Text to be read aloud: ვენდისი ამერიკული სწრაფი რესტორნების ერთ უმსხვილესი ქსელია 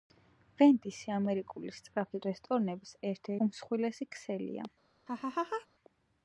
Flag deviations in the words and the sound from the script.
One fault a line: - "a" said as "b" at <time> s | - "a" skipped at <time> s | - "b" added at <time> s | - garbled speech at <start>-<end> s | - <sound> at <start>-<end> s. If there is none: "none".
- laugh at 5.1-5.7 s